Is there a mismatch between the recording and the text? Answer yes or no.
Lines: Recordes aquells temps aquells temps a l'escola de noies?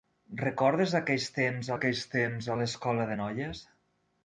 no